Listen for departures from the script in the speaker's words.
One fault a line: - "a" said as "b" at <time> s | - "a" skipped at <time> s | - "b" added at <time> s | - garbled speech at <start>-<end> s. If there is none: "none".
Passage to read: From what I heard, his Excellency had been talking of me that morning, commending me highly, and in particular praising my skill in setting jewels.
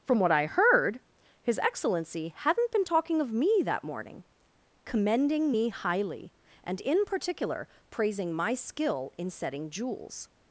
- "had" said as "hadn't" at 2.4 s